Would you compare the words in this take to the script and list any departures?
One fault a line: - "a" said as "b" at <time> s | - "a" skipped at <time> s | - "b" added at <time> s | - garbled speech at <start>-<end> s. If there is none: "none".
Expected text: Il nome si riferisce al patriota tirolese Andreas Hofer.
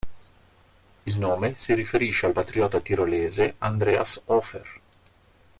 none